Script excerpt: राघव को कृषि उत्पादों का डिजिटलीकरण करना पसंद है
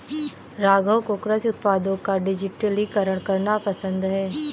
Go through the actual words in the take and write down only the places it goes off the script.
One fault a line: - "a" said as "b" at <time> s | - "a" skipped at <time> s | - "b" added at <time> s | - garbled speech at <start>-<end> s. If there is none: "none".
none